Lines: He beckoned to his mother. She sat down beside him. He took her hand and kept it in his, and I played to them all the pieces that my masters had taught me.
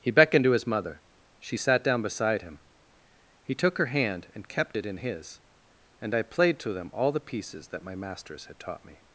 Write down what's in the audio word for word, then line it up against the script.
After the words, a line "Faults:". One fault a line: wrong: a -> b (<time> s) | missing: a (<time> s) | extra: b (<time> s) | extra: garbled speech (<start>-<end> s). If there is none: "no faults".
He beckoned to his mother. She sat down beside him. He took her hand and kept it in his, and I played to them all the pieces that my masters had taught me.
Faults:
no faults